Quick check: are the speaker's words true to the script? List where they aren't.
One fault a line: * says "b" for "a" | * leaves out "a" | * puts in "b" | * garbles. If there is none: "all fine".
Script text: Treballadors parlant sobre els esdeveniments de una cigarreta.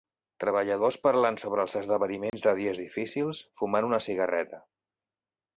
* puts in "dies difícils fumant"